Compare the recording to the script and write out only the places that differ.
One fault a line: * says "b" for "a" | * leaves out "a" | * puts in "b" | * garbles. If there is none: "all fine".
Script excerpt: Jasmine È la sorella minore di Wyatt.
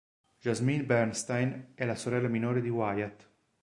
* puts in "Bernstein"